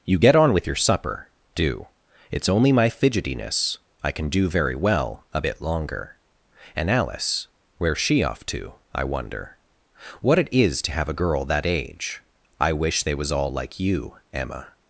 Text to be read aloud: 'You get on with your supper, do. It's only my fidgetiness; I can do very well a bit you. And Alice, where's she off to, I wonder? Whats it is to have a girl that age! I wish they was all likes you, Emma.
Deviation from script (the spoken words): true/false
true